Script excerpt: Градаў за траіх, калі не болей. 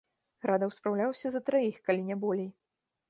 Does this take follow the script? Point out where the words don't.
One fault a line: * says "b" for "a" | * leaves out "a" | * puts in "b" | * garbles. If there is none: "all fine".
* puts in "спраўляўся"